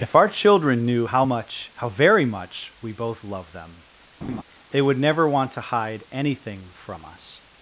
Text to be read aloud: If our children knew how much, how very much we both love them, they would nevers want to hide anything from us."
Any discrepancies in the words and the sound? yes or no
yes